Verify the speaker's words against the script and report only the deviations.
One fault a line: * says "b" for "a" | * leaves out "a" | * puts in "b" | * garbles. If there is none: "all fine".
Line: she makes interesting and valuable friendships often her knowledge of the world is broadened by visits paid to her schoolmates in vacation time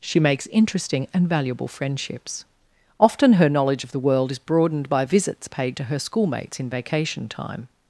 all fine